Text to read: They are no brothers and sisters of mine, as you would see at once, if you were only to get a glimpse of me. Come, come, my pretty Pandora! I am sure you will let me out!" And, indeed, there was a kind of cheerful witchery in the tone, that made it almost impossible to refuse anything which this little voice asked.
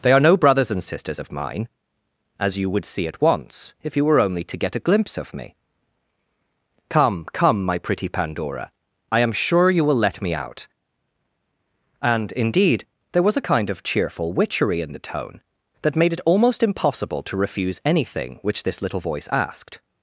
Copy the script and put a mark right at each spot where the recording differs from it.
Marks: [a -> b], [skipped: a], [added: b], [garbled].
They are no brothers and sisters of mine, as you would see at once, if you were only to get a glimpse of me. Come, come, my pretty Pandora! I am sure you will let me out!" And, indeed, there was a kind of cheerful witchery in the tone, that made it almost impossible to refuse anything which this little voice asked.